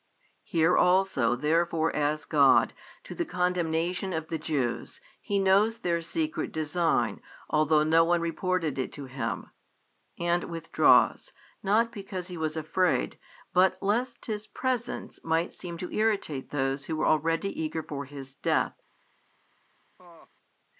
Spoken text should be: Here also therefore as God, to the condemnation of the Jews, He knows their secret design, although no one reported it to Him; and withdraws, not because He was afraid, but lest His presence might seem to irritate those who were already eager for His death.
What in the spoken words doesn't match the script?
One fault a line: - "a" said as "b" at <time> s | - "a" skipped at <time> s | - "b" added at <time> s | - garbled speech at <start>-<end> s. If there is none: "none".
none